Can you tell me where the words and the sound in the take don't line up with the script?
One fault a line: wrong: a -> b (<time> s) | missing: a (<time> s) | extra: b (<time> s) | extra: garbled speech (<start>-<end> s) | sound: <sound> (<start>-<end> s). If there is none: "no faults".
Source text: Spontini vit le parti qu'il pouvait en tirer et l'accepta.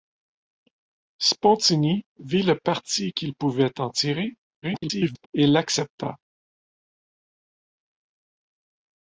extra: garbled speech (4.6-5.3 s)